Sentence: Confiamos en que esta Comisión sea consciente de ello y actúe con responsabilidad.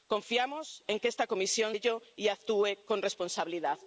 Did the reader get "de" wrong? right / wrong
wrong